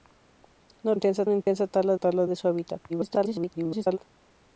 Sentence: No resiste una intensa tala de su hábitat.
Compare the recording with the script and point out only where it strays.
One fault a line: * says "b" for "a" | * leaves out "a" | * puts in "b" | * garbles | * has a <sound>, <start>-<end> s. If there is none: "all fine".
* says "intensa" for "resiste"
* has a dropout, 1.4-1.5 s
* puts in "tala"
* garbles